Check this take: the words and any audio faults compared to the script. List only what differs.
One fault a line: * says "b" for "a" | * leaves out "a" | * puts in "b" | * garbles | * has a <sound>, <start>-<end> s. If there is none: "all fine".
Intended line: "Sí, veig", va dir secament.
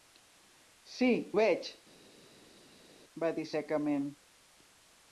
all fine